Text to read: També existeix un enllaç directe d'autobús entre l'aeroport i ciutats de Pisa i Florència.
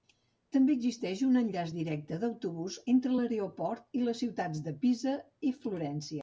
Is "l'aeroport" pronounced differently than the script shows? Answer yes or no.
no